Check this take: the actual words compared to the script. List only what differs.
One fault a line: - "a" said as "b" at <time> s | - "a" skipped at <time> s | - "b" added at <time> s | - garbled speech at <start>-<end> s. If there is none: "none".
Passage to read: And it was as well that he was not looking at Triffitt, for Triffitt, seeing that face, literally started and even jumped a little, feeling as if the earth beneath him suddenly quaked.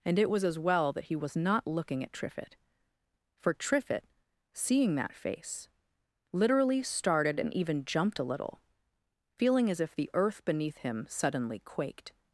none